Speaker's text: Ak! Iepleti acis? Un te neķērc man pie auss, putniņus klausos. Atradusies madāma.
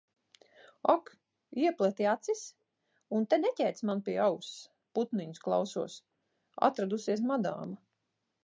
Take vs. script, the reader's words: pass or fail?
pass